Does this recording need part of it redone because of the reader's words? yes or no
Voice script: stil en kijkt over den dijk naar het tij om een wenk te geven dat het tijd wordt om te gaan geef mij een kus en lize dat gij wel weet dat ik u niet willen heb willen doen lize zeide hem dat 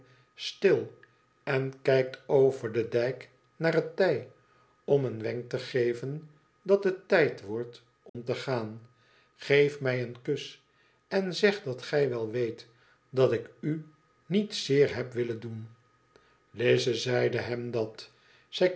yes